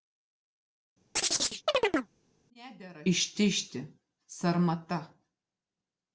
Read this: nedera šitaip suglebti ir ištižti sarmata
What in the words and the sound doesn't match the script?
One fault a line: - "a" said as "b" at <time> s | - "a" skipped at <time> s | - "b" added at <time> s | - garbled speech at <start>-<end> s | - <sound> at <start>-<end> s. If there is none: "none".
- chirp at 1.2-2.1 s
- "šitaip suglebti ir" skipped at 3.0 s